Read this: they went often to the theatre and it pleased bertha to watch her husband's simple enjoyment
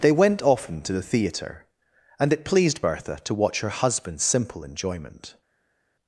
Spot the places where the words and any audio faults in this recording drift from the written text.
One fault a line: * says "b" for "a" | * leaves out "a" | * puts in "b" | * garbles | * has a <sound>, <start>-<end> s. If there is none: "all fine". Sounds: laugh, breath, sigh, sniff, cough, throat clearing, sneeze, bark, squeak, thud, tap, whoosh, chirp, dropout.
all fine